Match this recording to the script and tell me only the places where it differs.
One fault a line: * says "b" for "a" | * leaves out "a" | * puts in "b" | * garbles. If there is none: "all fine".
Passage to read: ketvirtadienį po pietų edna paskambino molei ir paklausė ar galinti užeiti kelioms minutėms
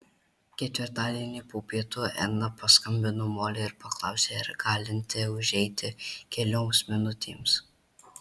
all fine